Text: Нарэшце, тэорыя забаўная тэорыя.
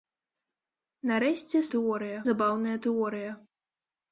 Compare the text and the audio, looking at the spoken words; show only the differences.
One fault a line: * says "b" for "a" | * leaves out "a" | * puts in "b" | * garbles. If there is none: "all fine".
all fine